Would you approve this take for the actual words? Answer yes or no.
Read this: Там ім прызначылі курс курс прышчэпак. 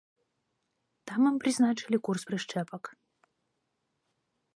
no